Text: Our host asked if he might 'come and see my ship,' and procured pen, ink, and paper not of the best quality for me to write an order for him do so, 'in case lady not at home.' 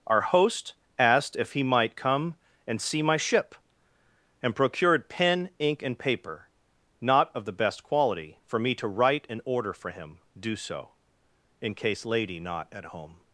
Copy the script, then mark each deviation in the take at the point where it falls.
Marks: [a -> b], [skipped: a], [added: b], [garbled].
Our host asked if he might 'come and see my ship,' and procured pen, ink, and paper not of the best quality for me to write an order for him do so, 'in case lady not at home.'